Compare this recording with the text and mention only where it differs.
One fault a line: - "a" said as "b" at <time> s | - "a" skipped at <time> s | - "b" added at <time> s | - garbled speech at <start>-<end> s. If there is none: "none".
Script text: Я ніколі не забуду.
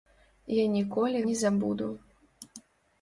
none